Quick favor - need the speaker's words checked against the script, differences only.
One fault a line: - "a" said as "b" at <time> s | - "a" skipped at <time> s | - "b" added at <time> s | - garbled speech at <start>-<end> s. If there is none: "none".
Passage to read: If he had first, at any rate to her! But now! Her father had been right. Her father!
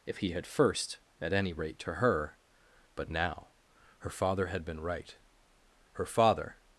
none